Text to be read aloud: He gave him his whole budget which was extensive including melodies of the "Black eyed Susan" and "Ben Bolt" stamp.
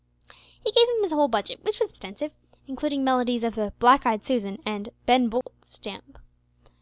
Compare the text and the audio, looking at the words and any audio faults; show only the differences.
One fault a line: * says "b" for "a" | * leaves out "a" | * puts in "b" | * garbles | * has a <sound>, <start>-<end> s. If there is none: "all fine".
* has a dropout, 5.4-5.5 s